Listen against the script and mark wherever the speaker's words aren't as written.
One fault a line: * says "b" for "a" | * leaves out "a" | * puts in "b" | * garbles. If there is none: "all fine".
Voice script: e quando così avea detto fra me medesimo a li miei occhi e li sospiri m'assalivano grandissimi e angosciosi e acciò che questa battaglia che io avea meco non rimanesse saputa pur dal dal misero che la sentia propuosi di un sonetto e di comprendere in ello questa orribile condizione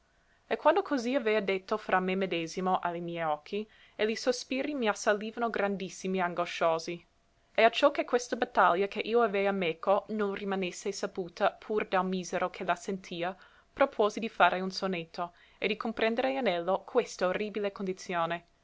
* leaves out "dal"
* puts in "fare"